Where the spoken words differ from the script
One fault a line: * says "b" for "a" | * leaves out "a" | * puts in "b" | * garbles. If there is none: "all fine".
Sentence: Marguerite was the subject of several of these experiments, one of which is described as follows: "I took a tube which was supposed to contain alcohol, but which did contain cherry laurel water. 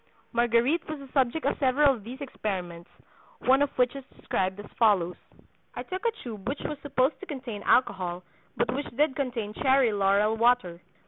all fine